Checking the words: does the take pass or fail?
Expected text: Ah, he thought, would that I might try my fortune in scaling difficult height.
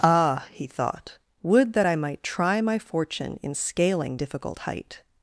pass